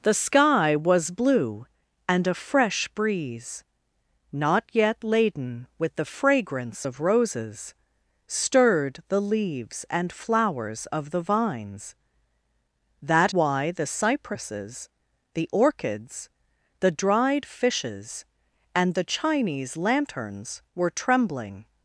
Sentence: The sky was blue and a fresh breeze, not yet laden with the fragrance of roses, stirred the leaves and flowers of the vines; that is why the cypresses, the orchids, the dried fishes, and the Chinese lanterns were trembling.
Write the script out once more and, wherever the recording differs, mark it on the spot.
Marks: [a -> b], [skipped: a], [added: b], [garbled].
The sky was blue and a fresh breeze, not yet laden with the fragrance of roses, stirred the leaves and flowers of the vines; that [skipped: is] why the cypresses, the orchids, the dried fishes, and the Chinese lanterns were trembling.